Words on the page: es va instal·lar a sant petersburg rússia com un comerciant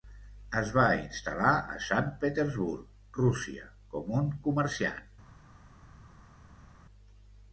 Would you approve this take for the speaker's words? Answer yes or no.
yes